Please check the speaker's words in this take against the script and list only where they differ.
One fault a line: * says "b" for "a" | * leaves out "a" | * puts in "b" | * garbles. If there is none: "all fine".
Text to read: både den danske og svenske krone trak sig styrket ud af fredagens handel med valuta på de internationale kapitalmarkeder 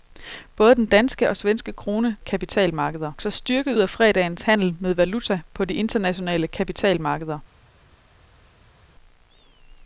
* says "kapitalmarkeder" for "trak"
* leaves out "ud"